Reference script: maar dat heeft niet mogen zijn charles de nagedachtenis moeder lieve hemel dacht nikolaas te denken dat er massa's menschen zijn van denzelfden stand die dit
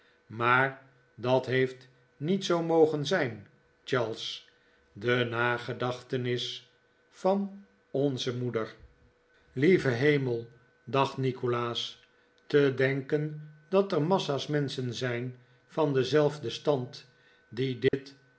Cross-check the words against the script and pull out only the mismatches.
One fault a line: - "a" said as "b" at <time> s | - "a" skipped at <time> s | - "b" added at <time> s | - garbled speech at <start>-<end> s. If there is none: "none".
- "zoo" added at 2.5 s
- "van onze" added at 7.1 s